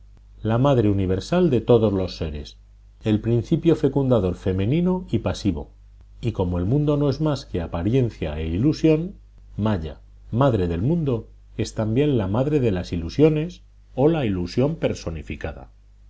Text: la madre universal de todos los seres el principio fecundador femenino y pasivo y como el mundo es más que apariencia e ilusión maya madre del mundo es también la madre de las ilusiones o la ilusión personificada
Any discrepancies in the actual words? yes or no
yes